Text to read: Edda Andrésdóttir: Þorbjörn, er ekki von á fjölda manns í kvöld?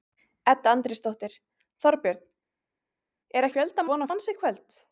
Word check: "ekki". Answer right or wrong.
wrong